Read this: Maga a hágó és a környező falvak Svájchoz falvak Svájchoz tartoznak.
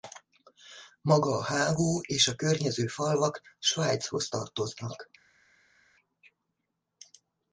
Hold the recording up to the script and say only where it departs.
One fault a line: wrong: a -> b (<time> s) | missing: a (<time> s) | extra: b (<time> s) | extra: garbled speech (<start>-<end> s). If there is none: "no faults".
missing: falvak Svájchoz (4.3 s)